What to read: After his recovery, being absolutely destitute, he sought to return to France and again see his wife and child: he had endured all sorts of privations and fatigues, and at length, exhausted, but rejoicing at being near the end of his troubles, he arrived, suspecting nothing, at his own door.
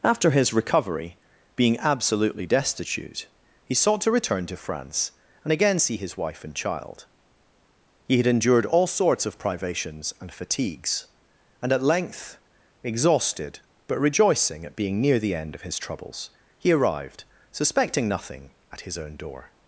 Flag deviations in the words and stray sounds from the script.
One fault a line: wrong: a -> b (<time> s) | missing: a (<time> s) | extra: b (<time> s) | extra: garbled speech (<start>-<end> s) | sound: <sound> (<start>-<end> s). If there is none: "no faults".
no faults